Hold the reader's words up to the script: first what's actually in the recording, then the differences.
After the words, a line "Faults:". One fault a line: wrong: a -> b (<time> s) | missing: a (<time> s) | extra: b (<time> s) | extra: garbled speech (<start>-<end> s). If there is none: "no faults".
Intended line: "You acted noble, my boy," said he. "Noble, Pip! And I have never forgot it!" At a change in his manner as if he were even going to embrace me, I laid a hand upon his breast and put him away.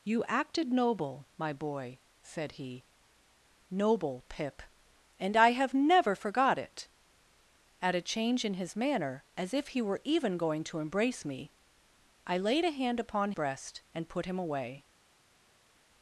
"You acted noble, my boy," said he. "Noble, Pip! And I have never forgot it!" At a change in his manner as if he were even going to embrace me, I laid a hand upon breast and put him away.
Faults:
missing: his (13.3 s)